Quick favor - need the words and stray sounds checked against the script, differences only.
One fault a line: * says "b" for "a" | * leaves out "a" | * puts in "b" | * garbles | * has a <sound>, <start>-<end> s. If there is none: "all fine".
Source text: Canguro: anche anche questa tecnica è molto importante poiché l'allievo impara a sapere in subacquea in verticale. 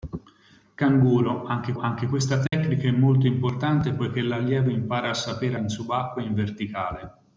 * has a dropout, 2.5-2.5 s